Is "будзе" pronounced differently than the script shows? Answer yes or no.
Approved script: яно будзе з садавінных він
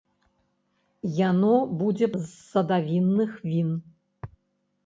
no